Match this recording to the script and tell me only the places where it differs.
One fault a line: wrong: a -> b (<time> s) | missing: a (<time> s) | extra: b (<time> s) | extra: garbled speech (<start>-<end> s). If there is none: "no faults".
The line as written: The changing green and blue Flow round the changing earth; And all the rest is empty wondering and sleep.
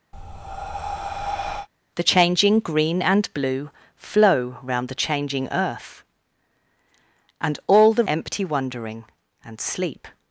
missing: rest is (8.0 s)